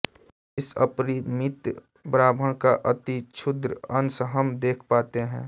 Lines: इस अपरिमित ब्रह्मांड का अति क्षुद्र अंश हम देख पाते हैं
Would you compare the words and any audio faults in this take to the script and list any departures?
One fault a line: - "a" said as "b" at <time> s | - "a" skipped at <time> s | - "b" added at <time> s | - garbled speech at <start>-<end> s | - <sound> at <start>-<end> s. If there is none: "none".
none